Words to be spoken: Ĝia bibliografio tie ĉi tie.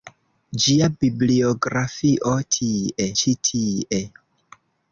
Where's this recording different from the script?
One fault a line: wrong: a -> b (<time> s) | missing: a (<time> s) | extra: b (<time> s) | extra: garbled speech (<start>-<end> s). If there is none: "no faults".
no faults